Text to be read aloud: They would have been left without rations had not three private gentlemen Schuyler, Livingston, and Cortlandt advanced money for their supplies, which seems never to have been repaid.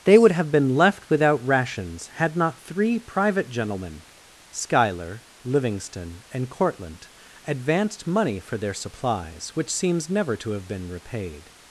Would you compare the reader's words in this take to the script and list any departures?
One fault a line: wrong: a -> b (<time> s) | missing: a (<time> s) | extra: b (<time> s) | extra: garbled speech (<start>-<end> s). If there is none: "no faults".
no faults